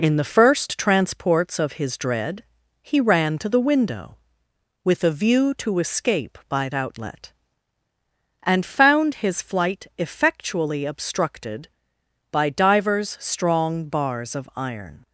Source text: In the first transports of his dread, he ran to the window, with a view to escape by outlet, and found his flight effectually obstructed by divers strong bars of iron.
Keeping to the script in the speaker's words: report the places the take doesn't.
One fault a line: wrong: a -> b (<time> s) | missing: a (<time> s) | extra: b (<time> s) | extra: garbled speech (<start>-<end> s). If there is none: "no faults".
no faults